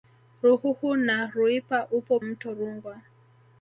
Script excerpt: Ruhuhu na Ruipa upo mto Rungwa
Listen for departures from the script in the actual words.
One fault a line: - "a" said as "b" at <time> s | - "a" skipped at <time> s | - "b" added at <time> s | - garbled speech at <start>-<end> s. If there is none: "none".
none